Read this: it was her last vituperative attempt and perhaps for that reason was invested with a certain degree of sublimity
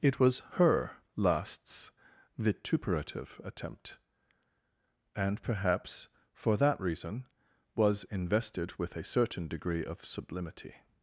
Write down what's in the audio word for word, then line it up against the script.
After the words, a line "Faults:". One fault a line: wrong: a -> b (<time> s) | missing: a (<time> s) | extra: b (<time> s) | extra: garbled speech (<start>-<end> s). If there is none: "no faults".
it was her lasts vituperative attempt and perhaps for that reason was invested with a certain degree of sublimity
Faults:
wrong: last -> lasts (1.2 s)